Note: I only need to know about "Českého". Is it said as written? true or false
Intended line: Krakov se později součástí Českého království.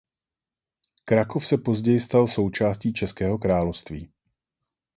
true